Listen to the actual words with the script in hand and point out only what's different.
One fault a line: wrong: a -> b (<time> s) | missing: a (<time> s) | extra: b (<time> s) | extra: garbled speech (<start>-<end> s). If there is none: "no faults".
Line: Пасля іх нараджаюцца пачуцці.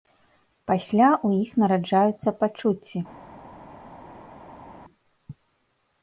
extra: ў (1.3 s)